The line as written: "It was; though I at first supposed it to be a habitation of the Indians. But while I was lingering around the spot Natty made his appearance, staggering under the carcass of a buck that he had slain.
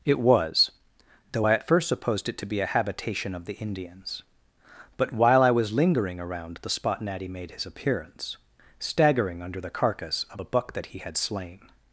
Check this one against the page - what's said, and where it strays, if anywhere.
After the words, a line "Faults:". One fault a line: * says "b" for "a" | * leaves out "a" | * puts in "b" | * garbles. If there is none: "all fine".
"It was; though I at first supposed it to be a habitation of the Indians. But while I was lingering around the spot Natty made his appearance, staggering under the carcass of a buck that he had slain.
Faults:
all fine